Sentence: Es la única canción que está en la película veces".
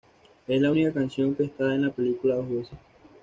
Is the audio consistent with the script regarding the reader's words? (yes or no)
no